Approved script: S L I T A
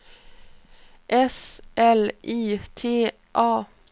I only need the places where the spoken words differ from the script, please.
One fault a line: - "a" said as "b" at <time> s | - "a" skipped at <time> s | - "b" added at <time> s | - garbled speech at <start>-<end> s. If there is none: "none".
none